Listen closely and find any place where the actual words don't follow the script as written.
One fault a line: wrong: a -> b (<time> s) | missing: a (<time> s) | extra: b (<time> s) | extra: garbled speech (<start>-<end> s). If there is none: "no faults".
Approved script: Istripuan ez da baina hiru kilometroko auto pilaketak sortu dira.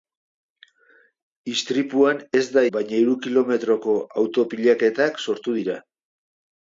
no faults